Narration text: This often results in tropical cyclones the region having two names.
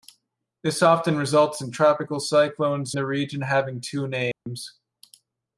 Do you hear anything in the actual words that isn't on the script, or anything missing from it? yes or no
no